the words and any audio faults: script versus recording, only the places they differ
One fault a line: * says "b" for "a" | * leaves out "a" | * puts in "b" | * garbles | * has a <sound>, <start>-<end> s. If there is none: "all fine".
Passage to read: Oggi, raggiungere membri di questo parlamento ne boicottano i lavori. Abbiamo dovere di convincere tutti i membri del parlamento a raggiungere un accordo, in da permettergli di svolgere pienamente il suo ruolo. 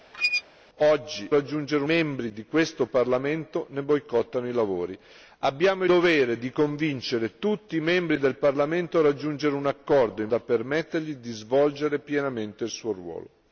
* has a squeak, 0.1-0.4 s